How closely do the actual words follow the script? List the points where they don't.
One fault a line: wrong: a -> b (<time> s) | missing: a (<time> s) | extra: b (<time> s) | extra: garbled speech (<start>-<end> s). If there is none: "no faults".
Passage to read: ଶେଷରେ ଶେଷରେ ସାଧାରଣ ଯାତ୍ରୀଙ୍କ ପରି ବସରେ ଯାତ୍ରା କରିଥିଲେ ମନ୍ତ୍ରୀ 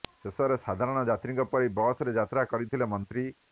missing: ଶେଷରେ (0.6 s)